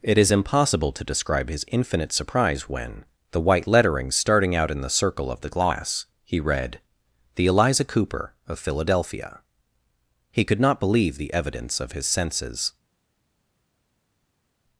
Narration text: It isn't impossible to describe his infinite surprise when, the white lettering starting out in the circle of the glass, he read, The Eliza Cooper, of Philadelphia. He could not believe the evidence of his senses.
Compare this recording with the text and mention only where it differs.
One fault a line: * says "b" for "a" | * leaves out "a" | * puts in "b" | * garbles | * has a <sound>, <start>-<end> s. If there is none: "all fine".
* says "is" for "isn't"